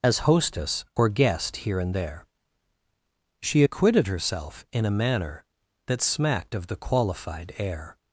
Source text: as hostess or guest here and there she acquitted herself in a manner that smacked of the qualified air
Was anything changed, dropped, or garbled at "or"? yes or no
no